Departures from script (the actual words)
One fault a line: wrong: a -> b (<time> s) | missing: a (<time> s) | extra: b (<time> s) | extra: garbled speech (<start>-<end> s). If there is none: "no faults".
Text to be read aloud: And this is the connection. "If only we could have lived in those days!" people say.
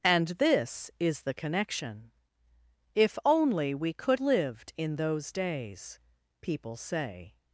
missing: have (4.2 s)